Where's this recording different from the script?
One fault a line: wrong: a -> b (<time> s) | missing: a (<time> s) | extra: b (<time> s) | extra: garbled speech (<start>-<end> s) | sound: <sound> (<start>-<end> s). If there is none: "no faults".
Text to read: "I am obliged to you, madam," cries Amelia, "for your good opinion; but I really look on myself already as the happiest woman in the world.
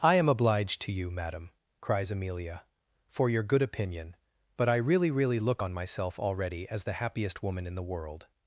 extra: really (5.1 s)